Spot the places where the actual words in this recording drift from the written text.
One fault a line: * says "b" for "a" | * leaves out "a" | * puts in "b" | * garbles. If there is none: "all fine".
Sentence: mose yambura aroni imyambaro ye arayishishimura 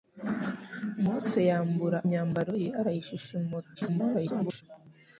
* leaves out "aroni"
* garbles